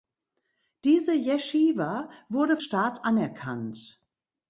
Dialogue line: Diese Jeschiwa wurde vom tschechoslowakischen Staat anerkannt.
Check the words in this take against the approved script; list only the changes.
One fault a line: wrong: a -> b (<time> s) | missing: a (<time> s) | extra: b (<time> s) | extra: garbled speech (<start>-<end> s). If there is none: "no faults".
missing: vom tschechoslowakischen (2.6 s)